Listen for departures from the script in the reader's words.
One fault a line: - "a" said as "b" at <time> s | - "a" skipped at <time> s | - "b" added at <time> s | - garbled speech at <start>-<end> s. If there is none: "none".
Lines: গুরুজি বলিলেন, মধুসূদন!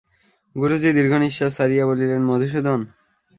- "দীর্ঘনিশ্বাস ছাড়িয়া" added at 1.0 s